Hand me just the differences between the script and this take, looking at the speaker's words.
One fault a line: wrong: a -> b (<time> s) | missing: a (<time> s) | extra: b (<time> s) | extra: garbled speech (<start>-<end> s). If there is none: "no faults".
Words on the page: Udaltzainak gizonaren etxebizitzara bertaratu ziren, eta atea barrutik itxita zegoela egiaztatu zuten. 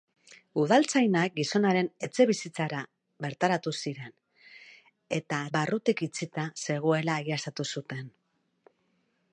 missing: atea (5.4 s)